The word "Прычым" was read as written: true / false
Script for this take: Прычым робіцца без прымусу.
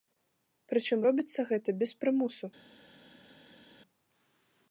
true